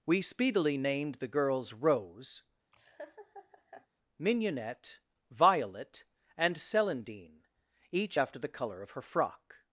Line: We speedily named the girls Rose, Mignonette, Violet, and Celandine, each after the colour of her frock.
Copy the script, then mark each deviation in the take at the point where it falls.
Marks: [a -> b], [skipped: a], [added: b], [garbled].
We speedily named the girls Rose, Mignonette, Violet, and Celandine, each after the colour of her frock.